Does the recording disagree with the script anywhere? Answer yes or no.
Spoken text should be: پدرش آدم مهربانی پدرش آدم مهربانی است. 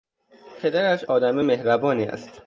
yes